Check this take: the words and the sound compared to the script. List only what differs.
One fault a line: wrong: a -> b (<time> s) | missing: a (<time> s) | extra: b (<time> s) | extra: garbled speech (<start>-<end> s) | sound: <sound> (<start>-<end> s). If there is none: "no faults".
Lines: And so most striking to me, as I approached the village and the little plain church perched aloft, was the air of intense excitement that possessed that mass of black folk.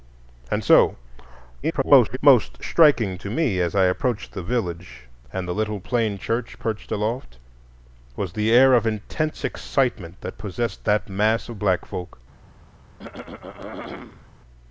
extra: garbled speech (1.6-2.2 s)
sound: throat clearing (13.0-14.3 s)